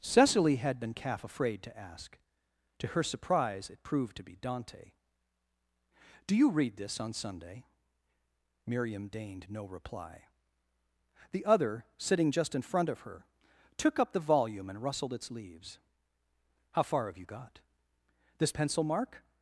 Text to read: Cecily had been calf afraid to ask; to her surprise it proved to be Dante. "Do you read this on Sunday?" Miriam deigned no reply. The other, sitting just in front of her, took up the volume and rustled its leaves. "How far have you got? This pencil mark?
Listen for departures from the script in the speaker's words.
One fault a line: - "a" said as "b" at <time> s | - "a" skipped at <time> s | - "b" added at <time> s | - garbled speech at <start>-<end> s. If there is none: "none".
none